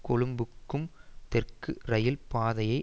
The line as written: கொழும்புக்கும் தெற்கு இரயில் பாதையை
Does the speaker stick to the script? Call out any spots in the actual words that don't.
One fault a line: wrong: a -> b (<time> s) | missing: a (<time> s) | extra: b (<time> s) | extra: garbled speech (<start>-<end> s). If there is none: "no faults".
no faults